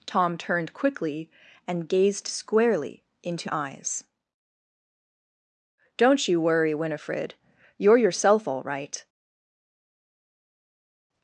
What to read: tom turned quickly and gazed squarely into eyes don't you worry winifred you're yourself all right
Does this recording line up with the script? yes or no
yes